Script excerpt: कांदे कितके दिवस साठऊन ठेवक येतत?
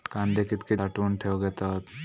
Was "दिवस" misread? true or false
true